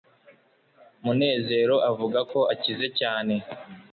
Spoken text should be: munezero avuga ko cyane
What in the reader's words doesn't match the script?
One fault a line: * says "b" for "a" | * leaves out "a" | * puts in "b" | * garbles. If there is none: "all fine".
* puts in "akize"